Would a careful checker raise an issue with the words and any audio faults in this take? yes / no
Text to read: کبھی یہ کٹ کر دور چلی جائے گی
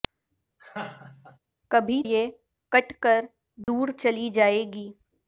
yes